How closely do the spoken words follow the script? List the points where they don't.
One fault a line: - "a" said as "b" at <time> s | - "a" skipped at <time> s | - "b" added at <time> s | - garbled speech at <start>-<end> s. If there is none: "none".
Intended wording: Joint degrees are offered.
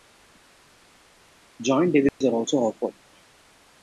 - "also" added at 2.3 s